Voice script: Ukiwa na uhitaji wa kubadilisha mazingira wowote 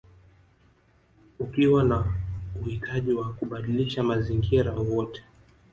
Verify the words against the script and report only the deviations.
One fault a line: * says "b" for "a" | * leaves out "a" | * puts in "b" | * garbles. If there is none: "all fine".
all fine